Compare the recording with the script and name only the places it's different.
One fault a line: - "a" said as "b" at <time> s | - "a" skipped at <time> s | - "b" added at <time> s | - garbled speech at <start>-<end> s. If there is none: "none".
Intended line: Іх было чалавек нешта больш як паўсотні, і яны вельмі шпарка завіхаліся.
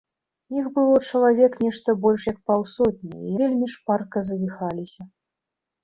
- "яны" skipped at 3.3 s